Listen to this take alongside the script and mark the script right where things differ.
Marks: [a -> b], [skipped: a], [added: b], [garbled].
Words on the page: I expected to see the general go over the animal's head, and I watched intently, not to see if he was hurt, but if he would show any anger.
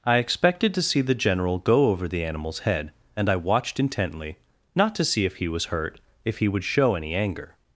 I expected to see the general go over the animal's head, and I watched intently, not to see if he was hurt, [skipped: but] if he would show any anger.